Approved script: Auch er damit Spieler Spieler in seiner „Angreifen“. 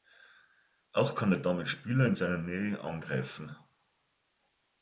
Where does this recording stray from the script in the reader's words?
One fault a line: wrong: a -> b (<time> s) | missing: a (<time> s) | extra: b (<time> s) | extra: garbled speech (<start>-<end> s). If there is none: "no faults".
extra: kann (1.1 s)
missing: Spieler (2.1 s)
extra: Nähe (2.4 s)